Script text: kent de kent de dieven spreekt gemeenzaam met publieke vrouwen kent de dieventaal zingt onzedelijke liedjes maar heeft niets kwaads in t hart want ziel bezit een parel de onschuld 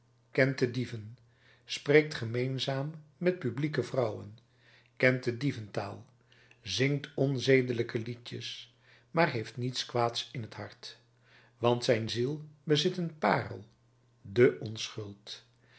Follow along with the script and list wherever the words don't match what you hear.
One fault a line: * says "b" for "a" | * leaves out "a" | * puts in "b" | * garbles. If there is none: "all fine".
* leaves out "kent de"
* puts in "zijn"